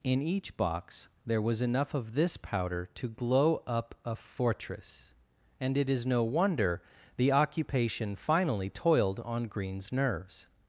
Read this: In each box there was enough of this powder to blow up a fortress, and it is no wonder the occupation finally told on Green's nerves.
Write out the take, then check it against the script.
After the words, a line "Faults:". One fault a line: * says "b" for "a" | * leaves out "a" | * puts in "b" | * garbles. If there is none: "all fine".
In each box there was enough of this powder to glow up a fortress, and it is no wonder the occupation finally toiled on Green's nerves.
Faults:
* says "glow" for "blow"
* says "toiled" for "told"